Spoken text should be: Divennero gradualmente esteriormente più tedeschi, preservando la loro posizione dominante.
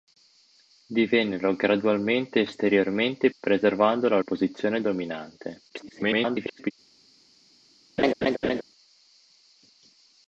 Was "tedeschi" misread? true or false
true